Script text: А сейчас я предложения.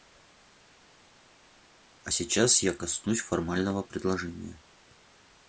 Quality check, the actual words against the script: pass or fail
fail